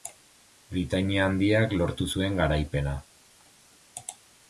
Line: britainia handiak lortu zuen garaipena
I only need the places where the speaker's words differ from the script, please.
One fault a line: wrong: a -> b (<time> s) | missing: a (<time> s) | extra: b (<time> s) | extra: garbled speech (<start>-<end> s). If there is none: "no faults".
no faults